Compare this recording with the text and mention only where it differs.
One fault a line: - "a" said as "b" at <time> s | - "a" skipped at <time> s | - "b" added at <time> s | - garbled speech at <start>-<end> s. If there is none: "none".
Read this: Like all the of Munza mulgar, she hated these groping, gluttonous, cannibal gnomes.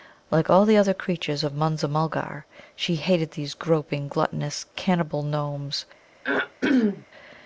- "other creatures" added at 0.8 s